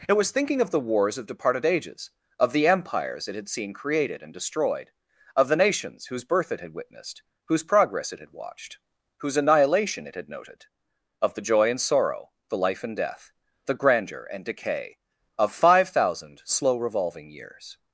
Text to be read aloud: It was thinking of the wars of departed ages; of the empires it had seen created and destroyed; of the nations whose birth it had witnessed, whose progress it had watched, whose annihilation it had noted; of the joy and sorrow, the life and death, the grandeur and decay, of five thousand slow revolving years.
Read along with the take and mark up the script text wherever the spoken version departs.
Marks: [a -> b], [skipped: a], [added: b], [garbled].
It was thinking of the wars of departed ages; of the empires it had seen created and destroyed; of the nations whose birth it had witnessed, whose progress it had watched, whose annihilation it had noted; of the joy and sorrow, the life and death, the grandeur and decay, of five thousand slow revolving years.